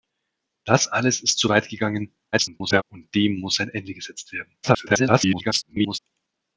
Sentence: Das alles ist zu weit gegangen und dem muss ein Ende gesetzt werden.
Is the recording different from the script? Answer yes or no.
yes